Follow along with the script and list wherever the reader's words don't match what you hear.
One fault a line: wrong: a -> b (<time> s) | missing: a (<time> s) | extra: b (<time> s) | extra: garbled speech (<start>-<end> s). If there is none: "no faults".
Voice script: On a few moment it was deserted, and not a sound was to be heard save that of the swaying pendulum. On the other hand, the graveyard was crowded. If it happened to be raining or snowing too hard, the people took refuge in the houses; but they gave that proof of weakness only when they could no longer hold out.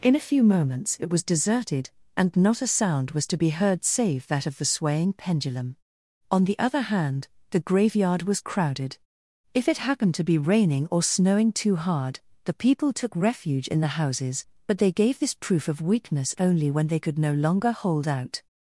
wrong: On -> In (0.0 s)
wrong: moment -> moments (0.4 s)
wrong: that -> this (15.2 s)